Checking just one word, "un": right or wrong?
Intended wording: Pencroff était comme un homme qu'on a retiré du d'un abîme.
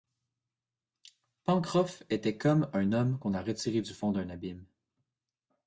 right